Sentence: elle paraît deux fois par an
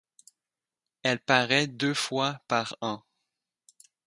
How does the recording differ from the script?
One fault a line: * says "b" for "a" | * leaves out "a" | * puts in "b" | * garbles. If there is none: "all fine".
all fine